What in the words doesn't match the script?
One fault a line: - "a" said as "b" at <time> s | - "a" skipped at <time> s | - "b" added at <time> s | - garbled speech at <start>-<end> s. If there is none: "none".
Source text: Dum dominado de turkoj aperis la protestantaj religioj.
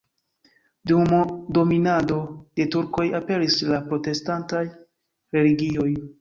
none